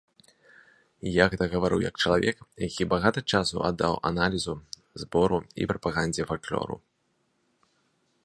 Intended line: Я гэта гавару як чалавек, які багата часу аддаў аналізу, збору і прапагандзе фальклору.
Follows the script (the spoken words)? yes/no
yes